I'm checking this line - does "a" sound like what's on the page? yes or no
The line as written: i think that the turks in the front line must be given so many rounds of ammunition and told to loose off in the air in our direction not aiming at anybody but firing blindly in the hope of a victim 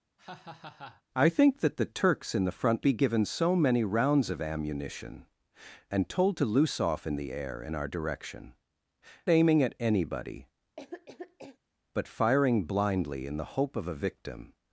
yes